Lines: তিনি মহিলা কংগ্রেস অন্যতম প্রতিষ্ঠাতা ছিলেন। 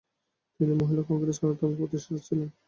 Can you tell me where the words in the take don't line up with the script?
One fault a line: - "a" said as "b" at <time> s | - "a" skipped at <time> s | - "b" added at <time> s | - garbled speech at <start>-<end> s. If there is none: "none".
none